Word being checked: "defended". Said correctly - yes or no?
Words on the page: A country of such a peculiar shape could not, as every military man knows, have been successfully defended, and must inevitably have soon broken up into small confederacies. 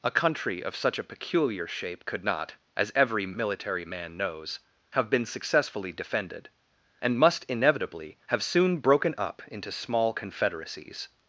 yes